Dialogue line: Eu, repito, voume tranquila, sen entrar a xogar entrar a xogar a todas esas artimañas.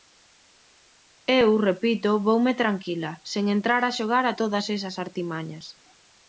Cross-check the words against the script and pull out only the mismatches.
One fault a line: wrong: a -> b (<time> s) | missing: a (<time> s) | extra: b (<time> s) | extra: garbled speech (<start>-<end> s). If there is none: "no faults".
missing: entrar a xogar (4.2 s)